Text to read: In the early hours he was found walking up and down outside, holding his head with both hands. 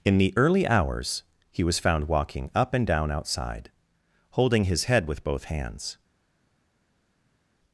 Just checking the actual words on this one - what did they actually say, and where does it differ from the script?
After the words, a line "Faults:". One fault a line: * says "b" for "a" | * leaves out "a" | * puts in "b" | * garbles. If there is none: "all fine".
In the early hours he was found walking up and down outside, holding his head with both hands.
Faults:
all fine